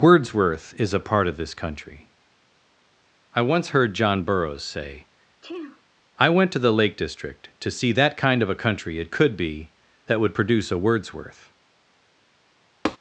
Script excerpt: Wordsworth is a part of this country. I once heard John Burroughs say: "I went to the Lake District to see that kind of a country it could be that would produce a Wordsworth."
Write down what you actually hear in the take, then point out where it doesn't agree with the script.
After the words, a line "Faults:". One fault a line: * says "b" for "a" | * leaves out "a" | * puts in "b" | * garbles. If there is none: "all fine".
Wordsworth is a part of this country. I once heard John Burroughs say: "I went to the Lake District to see that kind of a country it could be that would produce a Wordsworth."
Faults:
all fine